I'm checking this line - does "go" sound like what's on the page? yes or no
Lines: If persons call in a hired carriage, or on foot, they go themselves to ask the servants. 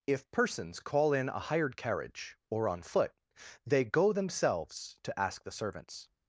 yes